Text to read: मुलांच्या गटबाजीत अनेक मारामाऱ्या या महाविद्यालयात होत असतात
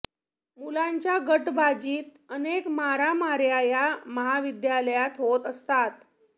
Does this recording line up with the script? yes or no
yes